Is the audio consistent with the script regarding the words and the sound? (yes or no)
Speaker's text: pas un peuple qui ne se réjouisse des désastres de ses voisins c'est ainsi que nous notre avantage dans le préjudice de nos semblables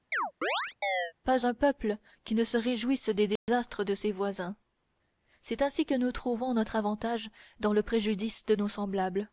no